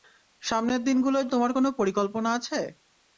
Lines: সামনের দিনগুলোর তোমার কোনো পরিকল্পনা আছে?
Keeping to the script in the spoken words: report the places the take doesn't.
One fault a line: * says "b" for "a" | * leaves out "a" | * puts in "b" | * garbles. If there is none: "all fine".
all fine